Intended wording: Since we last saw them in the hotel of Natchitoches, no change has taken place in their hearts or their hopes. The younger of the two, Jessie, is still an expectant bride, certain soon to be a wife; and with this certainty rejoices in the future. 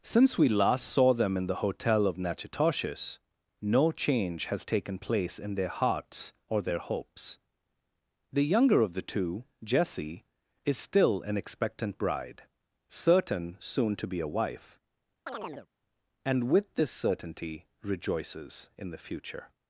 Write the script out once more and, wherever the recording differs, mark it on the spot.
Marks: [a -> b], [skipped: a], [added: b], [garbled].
Since we last saw them in the hotel of Natchitoches, no change has taken place in their hearts or their hopes. The younger of the two, Jessie, is still an expectant bride, certain soon to be a wife; and with this certainty rejoices in the future.